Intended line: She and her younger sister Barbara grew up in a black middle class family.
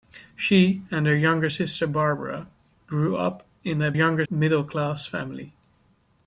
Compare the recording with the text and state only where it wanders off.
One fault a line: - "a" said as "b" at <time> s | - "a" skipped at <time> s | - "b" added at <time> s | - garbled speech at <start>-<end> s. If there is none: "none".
- "black" said as "younger" at 3.9 s